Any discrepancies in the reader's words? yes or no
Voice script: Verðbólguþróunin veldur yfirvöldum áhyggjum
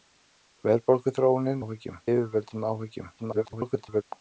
yes